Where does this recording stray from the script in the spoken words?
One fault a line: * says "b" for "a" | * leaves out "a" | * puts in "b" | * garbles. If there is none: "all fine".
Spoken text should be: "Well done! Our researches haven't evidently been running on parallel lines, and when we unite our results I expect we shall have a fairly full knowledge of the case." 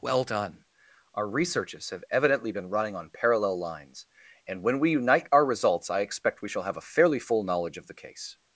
* says "have" for "haven't"